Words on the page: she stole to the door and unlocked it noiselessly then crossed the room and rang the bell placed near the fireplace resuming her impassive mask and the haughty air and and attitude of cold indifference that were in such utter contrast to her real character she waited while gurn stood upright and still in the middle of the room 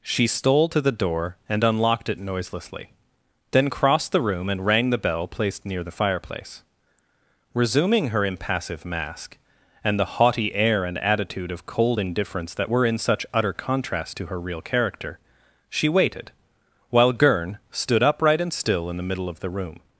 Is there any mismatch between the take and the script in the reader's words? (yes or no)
yes